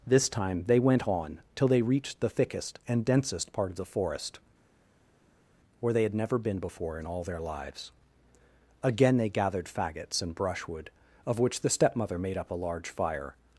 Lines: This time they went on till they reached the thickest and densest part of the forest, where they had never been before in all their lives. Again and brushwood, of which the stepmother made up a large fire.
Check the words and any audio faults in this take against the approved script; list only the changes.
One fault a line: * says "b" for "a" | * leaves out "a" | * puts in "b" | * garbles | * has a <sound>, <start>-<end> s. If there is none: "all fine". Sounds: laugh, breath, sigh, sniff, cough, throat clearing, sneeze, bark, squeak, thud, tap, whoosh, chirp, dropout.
* puts in "they gathered faggots"